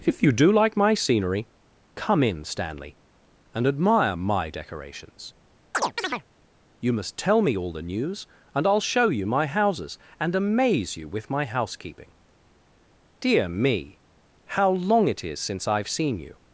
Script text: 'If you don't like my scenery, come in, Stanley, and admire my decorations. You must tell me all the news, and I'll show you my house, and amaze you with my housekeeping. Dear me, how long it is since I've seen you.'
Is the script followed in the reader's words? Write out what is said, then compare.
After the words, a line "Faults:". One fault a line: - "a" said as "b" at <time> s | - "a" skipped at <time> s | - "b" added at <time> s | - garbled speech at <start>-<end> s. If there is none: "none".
'If you do like my scenery, come in, Stanley, and admire my decorations. You must tell me all the news, and I'll show you my houses, and amaze you with my housekeeping. Dear me, how long it is since I've seen you.'
Faults:
- "don't" said as "do" at 0.3 s
- "house" said as "houses" at 9.5 s